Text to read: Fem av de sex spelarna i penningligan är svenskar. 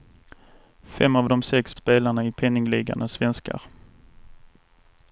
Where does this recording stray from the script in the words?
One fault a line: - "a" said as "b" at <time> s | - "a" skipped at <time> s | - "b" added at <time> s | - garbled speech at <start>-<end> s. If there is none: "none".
none